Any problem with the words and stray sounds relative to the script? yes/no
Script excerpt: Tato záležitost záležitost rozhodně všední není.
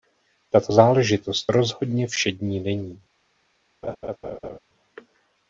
yes